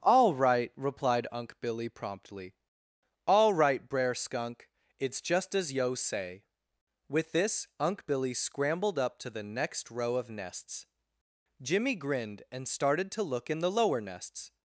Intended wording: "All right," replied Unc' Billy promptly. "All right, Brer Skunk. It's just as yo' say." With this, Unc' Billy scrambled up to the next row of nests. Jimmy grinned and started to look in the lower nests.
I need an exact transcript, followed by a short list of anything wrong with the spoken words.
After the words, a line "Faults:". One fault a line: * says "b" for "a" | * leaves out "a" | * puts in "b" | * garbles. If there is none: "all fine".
"All right," replied Unc' Billy promptly. "All right, Brer Skunk. It's just as yo' say." With this, Unc' Billy scrambled up to the next row of nests. Jimmy grinned and started to look in the lower nests.
Faults:
all fine